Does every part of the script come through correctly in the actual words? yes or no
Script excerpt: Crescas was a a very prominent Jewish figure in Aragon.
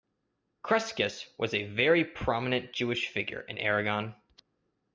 no